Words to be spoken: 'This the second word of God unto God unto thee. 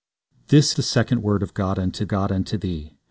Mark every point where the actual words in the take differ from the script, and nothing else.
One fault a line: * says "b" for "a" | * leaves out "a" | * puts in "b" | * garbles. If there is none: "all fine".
all fine